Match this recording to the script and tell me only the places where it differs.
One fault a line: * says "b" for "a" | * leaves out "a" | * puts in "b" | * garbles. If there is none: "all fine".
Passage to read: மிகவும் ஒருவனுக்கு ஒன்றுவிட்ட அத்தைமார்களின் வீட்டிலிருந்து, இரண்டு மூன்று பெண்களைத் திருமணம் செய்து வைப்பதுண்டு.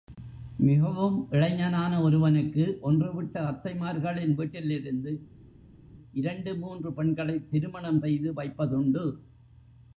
* puts in "இளைஞனான"